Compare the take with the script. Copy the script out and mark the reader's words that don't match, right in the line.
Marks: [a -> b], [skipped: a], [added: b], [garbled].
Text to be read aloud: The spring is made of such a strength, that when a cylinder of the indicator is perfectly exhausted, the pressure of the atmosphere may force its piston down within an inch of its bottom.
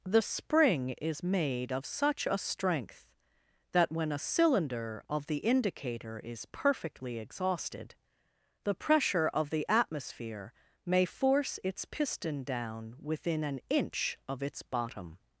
The spring is made of such a strength, that when a cylinder of the indicator is perfectly exhausted, the pressure of the atmosphere may force its piston down within an inch of its bottom.